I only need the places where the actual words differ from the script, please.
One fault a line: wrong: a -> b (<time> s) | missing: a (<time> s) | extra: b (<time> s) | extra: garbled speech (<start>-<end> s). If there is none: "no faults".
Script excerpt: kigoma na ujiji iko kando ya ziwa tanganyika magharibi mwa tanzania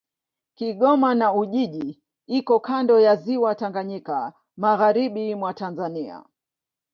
no faults